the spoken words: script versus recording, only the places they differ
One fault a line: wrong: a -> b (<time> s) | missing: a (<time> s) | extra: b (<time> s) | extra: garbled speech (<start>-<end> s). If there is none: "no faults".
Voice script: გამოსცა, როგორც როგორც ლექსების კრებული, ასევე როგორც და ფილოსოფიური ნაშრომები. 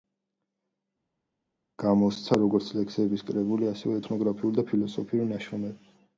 missing: როგორც (2.7 s)
wrong: როგორც -> ეთნოგრაფიული (4.0 s)